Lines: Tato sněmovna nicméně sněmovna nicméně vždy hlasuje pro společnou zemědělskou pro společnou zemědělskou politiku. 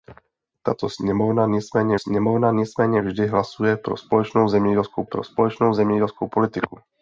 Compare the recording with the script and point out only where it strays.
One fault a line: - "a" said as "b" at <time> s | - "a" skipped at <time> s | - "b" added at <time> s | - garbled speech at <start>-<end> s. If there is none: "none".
none